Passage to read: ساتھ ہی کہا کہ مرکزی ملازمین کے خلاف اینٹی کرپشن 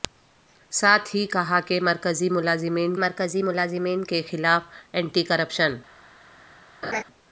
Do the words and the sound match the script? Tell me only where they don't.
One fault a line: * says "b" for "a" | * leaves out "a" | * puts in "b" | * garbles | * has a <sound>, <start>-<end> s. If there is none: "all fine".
* puts in "مرکزی ملازمین"
* has a laugh, 6.8-7.0 s